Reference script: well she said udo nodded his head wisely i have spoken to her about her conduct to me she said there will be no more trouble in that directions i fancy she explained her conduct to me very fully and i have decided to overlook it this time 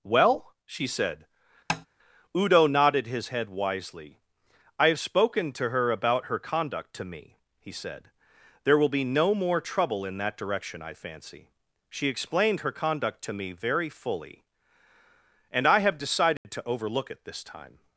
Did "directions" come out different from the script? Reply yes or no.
yes